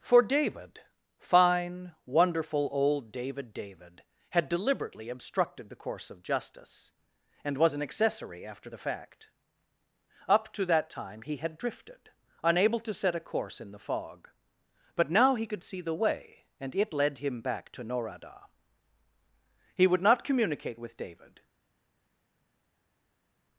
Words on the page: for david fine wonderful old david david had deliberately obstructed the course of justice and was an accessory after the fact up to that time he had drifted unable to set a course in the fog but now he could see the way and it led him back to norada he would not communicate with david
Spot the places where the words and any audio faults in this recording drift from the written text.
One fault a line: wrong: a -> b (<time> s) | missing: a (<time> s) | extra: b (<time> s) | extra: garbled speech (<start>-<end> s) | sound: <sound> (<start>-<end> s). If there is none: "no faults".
no faults